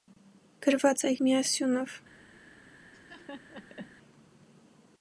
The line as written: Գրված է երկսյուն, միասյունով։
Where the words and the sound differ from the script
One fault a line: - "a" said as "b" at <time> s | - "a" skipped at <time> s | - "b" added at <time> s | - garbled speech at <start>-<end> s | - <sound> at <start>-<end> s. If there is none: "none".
- "երկսյուն" skipped at 1.1 s
- laugh at 2.9-4.0 s